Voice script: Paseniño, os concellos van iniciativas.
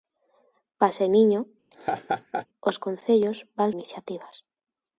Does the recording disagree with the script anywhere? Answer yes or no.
no